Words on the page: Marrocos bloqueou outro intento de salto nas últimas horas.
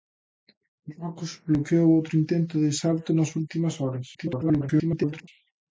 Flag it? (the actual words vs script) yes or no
yes